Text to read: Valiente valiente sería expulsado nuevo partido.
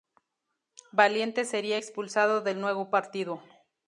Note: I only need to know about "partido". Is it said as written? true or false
true